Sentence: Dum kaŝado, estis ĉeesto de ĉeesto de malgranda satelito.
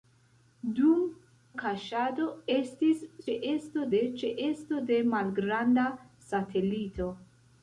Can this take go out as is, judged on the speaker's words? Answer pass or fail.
pass